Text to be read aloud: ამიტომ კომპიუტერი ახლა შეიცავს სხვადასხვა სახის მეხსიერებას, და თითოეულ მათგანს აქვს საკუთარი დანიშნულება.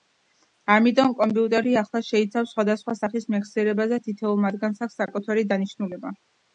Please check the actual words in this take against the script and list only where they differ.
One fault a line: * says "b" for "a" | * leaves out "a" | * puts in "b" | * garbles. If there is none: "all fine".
all fine